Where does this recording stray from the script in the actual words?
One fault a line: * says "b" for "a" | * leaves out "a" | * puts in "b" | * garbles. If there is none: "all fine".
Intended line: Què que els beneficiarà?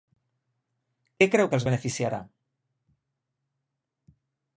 * puts in "creu"